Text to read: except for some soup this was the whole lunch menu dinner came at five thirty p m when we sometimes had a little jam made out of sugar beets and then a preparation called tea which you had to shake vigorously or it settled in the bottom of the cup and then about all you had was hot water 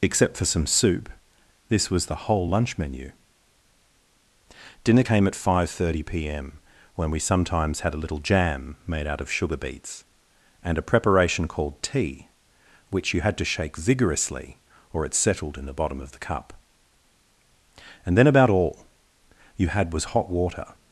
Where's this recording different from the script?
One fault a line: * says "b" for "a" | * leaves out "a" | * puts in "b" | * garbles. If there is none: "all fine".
* leaves out "then"